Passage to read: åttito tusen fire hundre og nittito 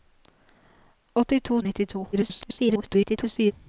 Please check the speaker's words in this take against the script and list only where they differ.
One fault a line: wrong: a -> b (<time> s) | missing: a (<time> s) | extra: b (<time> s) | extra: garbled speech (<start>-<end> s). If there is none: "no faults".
missing: tusen fire hundre (1.6 s)
extra: garbled speech (2.1-3.5 s)